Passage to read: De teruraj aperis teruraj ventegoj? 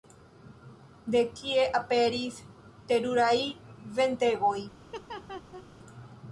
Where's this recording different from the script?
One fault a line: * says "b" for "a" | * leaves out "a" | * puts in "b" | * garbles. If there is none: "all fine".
* says "kie" for "teruraj"